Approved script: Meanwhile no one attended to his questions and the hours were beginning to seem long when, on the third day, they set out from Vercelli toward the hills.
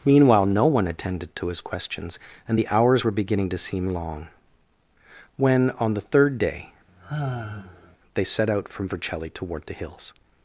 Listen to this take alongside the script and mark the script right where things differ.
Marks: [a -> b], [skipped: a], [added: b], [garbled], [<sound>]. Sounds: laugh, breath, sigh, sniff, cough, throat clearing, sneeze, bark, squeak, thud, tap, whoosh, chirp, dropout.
Meanwhile no one attended to his questions and the hours were beginning to seem long when, on the third day, [sigh] they set out from Vercelli toward the hills.